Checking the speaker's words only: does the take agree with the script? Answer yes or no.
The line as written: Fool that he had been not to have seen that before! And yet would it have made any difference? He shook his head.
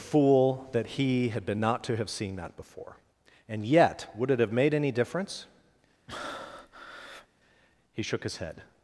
yes